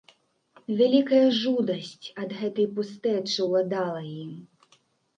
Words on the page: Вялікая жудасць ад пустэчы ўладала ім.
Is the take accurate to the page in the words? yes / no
no